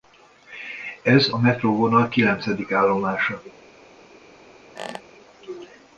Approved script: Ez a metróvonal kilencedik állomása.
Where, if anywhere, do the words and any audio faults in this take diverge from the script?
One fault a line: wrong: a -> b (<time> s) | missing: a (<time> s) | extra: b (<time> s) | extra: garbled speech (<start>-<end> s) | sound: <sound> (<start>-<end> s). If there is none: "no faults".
sound: squeak (4.8-5.0 s)